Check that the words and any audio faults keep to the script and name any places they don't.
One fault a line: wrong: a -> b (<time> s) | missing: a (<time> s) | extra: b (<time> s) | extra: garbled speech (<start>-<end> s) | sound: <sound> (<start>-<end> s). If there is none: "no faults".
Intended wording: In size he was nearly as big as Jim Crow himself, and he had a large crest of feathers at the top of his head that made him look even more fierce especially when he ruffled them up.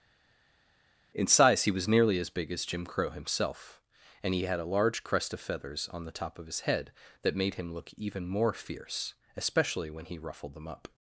wrong: at -> on (5.9 s)